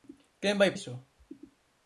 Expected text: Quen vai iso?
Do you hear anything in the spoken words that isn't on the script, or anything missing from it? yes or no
no